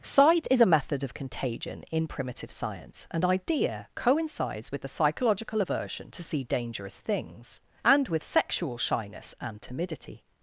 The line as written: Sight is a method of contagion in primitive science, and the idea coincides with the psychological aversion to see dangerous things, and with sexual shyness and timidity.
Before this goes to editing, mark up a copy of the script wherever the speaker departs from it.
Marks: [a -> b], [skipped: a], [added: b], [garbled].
Sight is a method of contagion in primitive science, and [skipped: the] idea coincides with the psychological aversion to see dangerous things, and with sexual shyness and timidity.